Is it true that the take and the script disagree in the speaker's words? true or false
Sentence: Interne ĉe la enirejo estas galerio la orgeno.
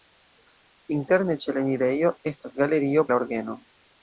false